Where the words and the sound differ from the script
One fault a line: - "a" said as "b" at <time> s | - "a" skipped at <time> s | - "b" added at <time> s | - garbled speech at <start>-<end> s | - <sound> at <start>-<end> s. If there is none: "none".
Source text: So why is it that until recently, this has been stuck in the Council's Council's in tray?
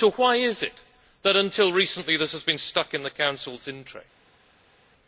- "Council's" skipped at 3.7 s